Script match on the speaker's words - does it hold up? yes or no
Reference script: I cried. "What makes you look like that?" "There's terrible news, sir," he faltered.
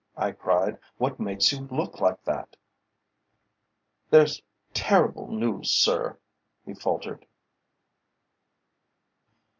yes